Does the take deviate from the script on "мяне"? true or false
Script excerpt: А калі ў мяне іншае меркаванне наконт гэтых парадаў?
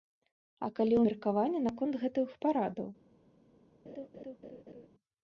true